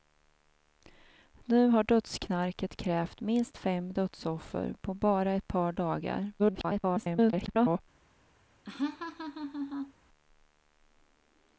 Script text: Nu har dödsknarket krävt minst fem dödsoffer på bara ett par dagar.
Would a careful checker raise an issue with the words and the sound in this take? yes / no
yes